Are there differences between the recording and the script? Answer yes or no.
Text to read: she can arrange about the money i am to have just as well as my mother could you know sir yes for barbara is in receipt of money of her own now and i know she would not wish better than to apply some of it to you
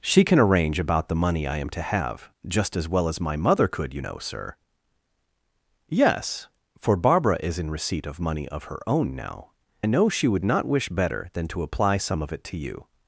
yes